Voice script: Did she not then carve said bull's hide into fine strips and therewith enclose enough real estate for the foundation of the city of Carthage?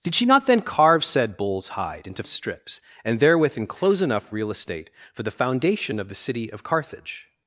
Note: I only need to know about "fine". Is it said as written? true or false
false